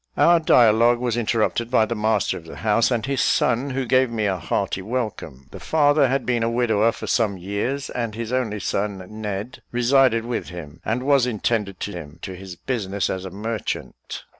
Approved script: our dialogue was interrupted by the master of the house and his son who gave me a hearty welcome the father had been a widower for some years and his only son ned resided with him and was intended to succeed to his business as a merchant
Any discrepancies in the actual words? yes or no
yes